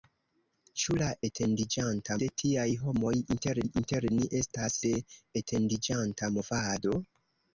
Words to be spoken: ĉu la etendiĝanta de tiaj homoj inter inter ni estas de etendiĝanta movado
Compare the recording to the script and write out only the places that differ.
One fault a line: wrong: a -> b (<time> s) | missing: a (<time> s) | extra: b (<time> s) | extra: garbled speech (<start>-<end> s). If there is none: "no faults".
no faults